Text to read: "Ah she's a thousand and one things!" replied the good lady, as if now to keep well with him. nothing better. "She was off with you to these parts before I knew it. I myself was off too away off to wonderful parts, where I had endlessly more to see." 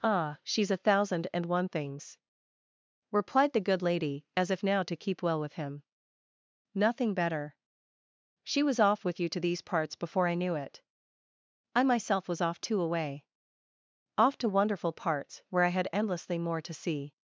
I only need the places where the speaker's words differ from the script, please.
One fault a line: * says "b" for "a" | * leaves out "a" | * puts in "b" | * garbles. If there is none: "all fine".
all fine